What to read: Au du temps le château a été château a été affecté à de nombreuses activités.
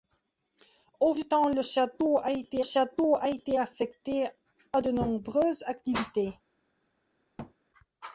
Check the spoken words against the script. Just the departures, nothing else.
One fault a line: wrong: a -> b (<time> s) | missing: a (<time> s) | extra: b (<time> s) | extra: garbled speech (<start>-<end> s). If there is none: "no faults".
no faults